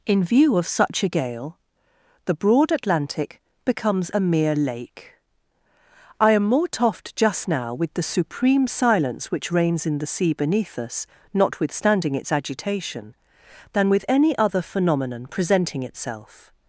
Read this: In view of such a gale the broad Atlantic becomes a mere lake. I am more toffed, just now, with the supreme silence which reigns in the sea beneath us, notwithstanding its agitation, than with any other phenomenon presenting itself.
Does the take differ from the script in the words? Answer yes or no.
no